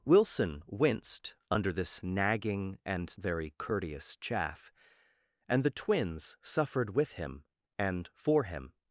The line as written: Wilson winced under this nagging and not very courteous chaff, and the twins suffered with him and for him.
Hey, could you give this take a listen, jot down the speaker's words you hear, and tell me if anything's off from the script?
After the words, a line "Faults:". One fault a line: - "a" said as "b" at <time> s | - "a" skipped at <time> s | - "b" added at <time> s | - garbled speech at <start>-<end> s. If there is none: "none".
Wilson winced under this nagging and very courteous chaff, and the twins suffered with him and for him.
Faults:
- "not" skipped at 3.2 s